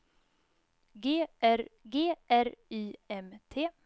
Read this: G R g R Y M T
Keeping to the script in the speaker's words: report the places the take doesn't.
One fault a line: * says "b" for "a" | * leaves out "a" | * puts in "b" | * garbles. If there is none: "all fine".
all fine